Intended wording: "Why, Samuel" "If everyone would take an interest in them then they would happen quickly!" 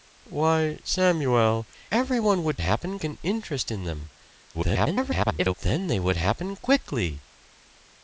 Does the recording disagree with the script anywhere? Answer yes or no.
yes